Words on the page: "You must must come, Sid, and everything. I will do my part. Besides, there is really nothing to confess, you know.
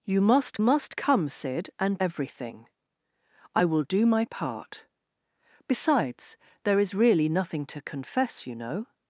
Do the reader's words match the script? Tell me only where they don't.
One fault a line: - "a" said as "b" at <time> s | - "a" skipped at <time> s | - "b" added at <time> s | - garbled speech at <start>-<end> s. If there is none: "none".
none